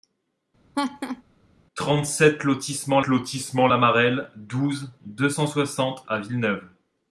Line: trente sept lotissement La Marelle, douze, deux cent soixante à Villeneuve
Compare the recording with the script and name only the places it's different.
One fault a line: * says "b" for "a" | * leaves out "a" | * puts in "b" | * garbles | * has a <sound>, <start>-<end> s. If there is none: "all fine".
* has a laugh, 0.7-1.2 s
* puts in "lotissement"